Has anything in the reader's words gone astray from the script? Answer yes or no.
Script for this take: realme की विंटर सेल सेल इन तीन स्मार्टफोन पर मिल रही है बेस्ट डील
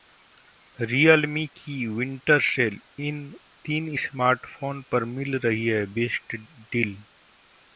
yes